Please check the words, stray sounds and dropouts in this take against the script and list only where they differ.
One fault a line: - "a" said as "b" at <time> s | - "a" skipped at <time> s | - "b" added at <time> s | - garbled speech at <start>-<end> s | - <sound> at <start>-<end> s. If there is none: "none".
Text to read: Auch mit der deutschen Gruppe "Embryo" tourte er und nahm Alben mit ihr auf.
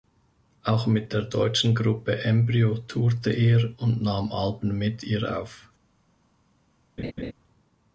- laugh at 7.0-7.3 s